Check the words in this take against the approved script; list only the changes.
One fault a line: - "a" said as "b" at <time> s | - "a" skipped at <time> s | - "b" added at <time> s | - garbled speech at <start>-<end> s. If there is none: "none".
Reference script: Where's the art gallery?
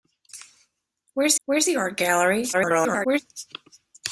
- "where's" added at 1.4 s
- garbled speech at 2.5-3.2 s